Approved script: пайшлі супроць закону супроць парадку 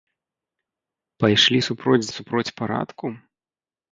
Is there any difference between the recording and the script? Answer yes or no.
yes